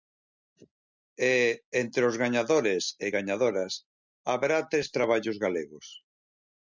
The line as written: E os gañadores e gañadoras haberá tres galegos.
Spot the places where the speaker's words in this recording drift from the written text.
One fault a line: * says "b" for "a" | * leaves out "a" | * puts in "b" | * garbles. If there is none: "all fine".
* puts in "entre"
* puts in "traballos"